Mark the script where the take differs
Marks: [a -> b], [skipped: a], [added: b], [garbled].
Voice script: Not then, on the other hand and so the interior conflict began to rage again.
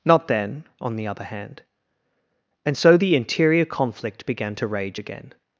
Not then, on the other hand and so the interior conflict began to rage again.